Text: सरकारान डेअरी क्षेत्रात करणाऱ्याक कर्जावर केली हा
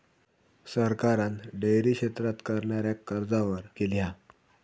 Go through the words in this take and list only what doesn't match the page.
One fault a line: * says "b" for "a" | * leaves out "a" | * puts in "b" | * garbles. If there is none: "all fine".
all fine